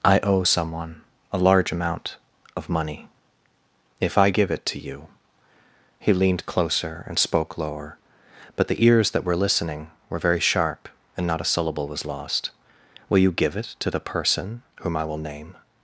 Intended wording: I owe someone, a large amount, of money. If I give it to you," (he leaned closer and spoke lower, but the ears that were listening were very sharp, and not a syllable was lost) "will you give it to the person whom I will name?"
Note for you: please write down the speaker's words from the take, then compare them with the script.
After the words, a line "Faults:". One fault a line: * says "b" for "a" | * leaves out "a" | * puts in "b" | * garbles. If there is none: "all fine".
I owe someone, a large amount, of money. If I give it to you," (he leaned closer and spoke lower, but the ears that were listening were very sharp, and not a syllable was lost) "will you give it to the person whom I will name?"
Faults:
all fine